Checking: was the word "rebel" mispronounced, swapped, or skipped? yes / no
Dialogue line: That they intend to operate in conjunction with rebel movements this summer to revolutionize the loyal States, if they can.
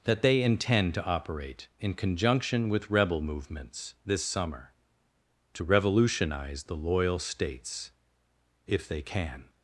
no